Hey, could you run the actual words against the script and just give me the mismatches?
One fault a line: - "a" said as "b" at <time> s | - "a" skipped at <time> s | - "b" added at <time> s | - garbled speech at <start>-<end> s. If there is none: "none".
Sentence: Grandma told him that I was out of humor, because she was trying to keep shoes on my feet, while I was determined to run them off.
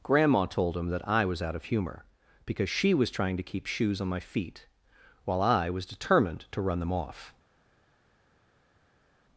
none